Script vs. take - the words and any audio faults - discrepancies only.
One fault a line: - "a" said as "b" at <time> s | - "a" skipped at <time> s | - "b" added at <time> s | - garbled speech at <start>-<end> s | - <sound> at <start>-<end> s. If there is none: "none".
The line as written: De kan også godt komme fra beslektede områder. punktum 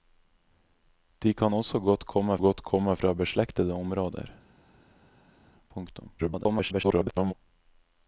- "godt komme" added at 2.5 s
- garbled speech at 6.2-7.3 s